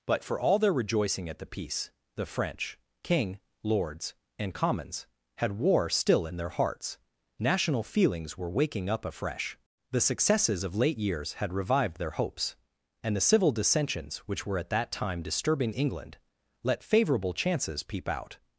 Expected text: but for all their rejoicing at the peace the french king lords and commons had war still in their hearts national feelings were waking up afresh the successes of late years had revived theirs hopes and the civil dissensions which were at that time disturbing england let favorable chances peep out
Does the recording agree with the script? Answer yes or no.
no